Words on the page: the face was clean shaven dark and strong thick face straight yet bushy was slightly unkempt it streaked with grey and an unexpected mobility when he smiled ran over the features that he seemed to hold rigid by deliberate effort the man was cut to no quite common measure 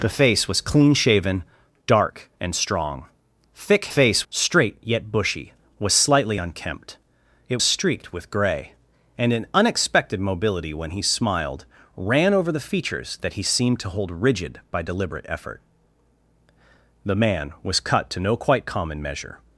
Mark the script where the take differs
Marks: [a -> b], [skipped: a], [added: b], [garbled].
the face was clean shaven dark and strong thick face straight yet bushy was slightly unkempt it streaked with grey and an unexpected mobility when he smiled ran over the features that he seemed to hold rigid by deliberate effort the man was cut to no quite common measure